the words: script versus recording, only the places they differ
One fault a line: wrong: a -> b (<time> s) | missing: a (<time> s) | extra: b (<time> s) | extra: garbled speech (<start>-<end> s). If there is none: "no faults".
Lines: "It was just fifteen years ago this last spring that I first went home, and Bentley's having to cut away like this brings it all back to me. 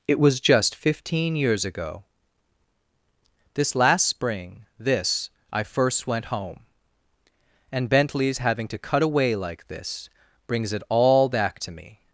wrong: that -> this (4.8 s)